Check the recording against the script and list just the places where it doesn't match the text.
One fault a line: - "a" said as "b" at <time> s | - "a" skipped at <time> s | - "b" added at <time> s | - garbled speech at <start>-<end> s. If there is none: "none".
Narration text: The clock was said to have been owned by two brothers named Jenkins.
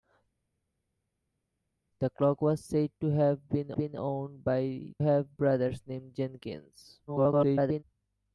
- "been" added at 3.7 s
- "two" said as "have" at 5.0 s
- garbled speech at 7.1-7.8 s